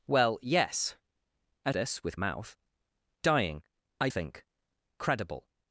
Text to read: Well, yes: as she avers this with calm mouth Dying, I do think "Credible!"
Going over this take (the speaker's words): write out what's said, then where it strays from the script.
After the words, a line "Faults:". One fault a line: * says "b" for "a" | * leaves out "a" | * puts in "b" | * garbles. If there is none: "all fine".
Well, yes: as this with mouth Dying, I think "Credible!"
Faults:
* leaves out "she avers"
* leaves out "calm"
* leaves out "do"